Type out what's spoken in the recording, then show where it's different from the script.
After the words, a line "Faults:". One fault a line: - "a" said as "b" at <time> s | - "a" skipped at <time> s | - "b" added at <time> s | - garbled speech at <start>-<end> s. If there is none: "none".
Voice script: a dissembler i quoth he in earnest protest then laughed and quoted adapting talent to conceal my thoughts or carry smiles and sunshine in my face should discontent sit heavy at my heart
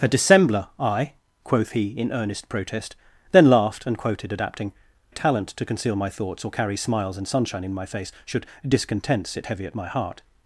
a dissembler i quoth he in earnest protest then laughed and quoted adapting talent to conceal my thoughts or carry smiles and sunshine in my face should discontent sit heavy at my heart
Faults:
none